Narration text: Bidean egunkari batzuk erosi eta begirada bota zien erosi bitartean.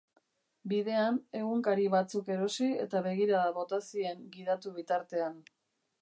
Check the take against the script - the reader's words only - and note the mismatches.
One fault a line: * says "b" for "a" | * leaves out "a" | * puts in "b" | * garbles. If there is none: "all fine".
* says "gidatu" for "erosi"